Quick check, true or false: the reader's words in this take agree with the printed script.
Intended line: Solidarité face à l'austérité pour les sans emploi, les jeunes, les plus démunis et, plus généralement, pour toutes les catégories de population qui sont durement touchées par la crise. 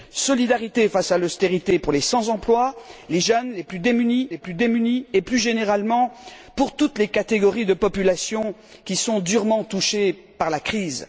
false